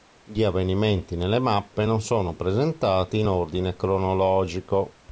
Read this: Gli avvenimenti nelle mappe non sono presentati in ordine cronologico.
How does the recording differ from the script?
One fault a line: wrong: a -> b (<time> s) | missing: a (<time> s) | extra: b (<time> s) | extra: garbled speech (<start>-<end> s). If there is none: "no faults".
no faults